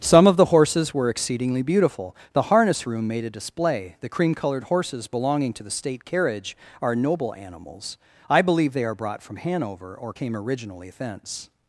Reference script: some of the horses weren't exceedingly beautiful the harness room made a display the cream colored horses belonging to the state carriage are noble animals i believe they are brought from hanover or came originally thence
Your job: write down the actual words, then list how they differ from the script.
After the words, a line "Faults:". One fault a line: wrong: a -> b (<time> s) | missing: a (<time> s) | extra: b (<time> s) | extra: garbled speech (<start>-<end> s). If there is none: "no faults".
some of the horses were exceedingly beautiful the harness room made a display the cream colored horses belonging to the state carriage are noble animals i believe they are brought from hanover or came originally thence
Faults:
wrong: weren't -> were (0.9 s)